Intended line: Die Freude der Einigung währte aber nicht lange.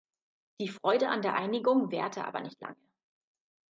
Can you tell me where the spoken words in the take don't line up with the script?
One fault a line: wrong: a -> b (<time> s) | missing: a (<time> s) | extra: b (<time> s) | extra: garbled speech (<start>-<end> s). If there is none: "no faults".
extra: an (1.1 s)